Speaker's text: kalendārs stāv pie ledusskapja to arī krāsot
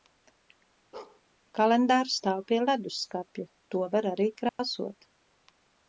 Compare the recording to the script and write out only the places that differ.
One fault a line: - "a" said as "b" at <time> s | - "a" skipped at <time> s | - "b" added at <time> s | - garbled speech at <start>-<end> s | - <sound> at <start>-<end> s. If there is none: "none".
- bark at 0.9-1.2 s
- "var" added at 4.0 s
- dropout at 4.5-4.6 s